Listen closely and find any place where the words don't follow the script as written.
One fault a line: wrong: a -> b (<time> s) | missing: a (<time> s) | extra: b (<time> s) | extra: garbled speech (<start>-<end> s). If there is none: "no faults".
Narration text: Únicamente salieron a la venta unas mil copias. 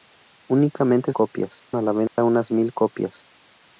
wrong: salieron -> copias (1.1 s)